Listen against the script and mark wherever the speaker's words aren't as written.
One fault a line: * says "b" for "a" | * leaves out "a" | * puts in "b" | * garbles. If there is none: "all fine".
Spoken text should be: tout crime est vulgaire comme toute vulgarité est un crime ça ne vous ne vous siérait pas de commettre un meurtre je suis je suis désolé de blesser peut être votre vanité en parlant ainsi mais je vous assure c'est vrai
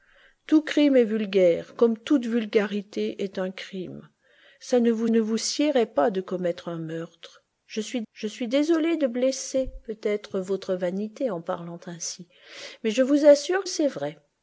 all fine